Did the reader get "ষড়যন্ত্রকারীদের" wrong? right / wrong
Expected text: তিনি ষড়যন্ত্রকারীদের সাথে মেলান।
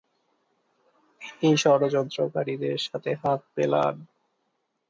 right